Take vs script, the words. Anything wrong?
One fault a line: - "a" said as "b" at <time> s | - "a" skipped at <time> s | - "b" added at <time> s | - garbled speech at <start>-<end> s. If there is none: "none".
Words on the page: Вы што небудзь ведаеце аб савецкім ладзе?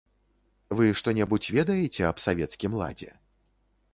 none